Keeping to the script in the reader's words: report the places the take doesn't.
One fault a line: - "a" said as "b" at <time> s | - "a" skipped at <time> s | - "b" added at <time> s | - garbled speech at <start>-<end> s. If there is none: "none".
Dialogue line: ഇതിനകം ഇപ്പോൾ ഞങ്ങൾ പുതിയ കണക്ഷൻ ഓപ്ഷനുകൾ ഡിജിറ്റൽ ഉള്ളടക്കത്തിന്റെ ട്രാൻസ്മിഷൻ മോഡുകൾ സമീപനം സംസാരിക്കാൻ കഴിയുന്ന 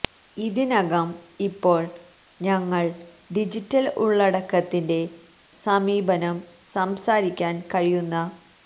- "പുതിയ കണക്ഷൻ ഓപ്ഷനുകൾ" skipped at 2.8 s
- "ട്രാൻസ്മിഷൻ മോഡുകൾ" skipped at 5.0 s